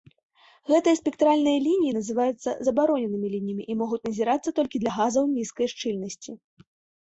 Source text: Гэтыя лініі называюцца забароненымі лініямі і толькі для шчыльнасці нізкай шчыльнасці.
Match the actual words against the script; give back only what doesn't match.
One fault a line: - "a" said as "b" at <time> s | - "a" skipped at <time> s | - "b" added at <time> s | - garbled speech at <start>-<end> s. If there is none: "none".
- "спектральныя" added at 1.0 s
- "могуць назірацца" added at 3.9 s
- "шчыльнасці" said as "газаў" at 5.0 s